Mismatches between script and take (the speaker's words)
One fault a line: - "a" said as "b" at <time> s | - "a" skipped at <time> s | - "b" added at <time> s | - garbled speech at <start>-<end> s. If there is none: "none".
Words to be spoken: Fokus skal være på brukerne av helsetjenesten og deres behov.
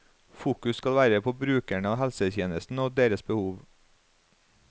none